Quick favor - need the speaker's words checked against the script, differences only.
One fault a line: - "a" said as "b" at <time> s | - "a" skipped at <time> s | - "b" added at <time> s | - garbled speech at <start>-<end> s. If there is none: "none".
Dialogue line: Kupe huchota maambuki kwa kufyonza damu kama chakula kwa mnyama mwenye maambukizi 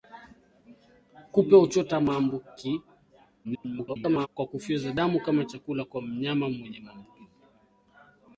- garbled speech at 3.4-4.3 s